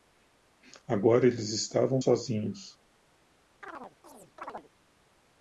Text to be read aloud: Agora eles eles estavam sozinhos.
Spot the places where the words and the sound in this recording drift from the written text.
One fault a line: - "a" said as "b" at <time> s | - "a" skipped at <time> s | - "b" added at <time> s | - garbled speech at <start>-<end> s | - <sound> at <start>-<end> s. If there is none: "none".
- "eles" skipped at 1.5 s
- chirp at 3.6-4.7 s